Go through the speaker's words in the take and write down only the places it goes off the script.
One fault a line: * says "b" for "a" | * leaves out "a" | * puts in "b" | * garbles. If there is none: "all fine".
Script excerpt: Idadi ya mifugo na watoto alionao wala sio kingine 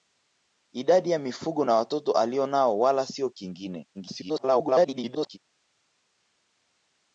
* garbles